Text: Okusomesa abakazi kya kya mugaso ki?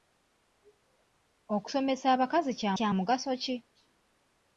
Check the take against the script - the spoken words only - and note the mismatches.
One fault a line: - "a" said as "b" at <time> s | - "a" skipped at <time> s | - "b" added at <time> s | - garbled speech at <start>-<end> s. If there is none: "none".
none